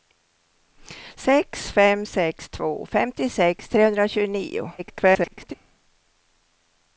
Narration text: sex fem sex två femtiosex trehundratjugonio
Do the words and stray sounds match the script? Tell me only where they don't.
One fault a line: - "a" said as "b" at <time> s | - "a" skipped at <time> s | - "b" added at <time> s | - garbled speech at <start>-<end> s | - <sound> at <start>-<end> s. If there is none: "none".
- garbled speech at 4.8-5.5 s